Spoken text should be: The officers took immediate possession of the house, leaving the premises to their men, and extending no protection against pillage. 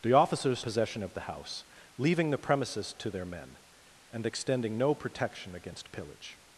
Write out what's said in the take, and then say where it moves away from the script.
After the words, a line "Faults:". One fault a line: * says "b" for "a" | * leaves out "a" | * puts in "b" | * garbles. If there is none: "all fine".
The officers possession of the house, leaving the premises to their men, and extending no protection against pillage.
Faults:
* leaves out "took immediate"